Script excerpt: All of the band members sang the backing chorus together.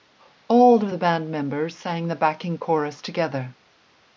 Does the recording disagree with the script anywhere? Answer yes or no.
no